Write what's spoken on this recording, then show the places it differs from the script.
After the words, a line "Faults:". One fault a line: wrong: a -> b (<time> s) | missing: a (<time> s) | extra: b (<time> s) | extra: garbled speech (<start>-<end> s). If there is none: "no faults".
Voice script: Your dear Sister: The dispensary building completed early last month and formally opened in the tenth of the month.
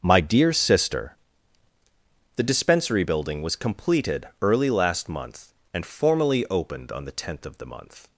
My dear Sister: The dispensary building was completed early last month and formally opened on the tenth of the month.
Faults:
wrong: Your -> My (0.0 s)
extra: was (3.4 s)
wrong: in -> on (6.9 s)